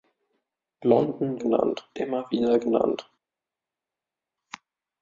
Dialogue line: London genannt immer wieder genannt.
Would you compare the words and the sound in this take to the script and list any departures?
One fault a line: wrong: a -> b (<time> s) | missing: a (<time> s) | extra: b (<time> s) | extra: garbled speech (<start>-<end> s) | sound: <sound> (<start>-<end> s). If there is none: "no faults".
no faults